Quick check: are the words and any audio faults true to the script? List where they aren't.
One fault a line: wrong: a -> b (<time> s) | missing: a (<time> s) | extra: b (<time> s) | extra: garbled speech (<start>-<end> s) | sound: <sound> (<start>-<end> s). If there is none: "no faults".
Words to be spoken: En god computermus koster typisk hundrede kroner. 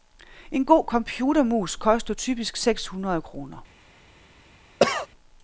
extra: seks (2.6 s)
sound: cough (4.8-5.1 s)